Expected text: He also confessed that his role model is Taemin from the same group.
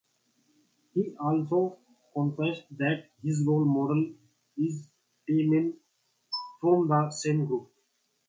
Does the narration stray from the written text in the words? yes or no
no